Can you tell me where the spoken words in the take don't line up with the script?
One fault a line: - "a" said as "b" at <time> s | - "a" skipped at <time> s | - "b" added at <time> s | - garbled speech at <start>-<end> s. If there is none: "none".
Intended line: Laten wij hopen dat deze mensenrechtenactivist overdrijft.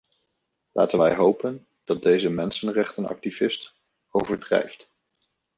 none